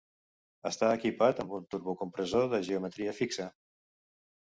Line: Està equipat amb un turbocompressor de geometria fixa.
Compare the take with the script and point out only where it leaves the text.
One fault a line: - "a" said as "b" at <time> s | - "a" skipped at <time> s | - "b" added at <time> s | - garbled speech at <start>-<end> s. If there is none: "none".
none